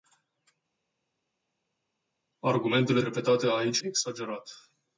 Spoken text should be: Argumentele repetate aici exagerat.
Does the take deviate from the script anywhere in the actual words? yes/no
no